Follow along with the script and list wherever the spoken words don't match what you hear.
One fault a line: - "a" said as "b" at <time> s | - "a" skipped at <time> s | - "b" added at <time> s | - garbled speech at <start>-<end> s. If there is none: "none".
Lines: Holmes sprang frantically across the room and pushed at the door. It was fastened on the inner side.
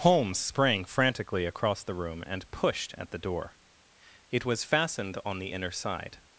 none